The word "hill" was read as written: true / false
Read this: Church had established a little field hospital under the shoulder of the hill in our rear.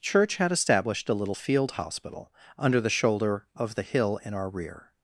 true